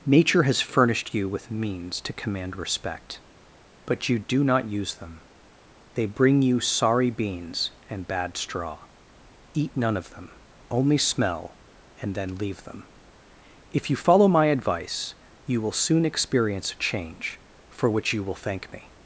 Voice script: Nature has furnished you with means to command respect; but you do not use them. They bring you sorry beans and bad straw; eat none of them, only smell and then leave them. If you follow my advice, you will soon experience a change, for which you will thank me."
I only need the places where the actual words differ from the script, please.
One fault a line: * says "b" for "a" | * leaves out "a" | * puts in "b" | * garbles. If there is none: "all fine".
all fine